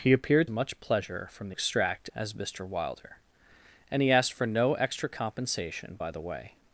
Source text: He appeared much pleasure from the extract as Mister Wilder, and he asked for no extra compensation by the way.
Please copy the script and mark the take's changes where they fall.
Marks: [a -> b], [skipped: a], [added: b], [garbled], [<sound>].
He appeared much pleasure from the extract as Mister Wilder, and he asked for no extra compensation by the way.